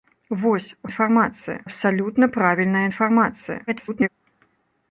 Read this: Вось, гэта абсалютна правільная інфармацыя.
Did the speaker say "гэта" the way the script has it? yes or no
no